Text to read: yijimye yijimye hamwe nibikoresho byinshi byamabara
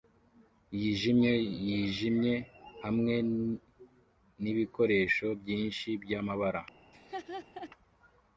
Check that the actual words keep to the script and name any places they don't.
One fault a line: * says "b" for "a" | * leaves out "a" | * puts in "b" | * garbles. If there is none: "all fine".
all fine